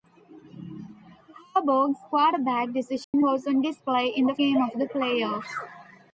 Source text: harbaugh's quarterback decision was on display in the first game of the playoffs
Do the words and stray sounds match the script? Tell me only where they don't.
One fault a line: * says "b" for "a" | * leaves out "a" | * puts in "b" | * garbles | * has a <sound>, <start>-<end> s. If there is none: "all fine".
* has a dropout, 3.0-3.1 s
* leaves out "first"